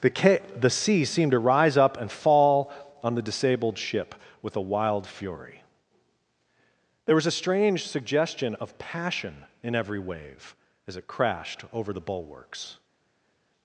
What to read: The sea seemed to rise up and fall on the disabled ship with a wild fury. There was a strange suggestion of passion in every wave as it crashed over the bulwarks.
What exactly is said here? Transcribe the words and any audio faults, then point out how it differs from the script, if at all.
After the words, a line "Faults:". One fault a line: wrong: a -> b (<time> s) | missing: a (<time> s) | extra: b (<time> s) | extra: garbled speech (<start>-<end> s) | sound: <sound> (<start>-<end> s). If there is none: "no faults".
The ca the sea seemed to rise up and fall on the disabled ship with a wild fury. There was a strange suggestion of passion in every wave as it crashed over the bulwarks.
Faults:
extra: ca the (0.1 s)